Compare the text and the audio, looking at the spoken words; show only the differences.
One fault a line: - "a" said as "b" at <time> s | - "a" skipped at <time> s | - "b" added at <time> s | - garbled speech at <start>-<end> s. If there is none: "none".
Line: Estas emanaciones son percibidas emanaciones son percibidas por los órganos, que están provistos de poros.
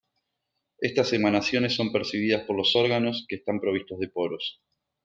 - "emanaciones son percibidas" skipped at 2.5 s